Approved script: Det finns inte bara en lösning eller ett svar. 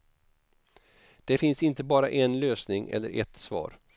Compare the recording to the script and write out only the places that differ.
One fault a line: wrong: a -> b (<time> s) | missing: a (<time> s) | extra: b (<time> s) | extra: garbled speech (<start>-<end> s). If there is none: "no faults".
no faults